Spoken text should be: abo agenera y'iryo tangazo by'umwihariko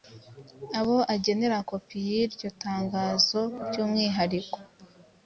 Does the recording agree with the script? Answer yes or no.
no